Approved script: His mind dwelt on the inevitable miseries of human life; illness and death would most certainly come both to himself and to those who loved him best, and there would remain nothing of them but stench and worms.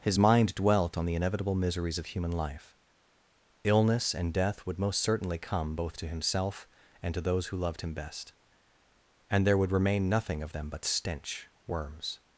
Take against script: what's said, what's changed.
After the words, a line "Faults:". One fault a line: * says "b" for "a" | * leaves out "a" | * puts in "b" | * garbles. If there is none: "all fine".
His mind dwelt on the inevitable miseries of human life; illness and death would most certainly come both to himself and to those who loved him best, and there would remain nothing of them but stench worms.
Faults:
* leaves out "and"